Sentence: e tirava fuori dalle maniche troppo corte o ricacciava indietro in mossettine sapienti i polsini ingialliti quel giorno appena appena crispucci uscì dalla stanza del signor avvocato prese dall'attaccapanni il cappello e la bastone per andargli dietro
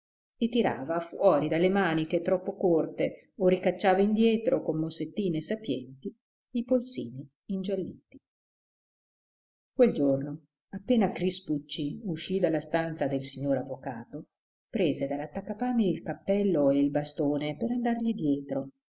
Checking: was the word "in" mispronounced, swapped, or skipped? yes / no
yes